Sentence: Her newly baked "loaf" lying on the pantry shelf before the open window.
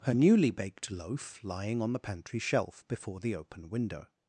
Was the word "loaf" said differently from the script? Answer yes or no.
no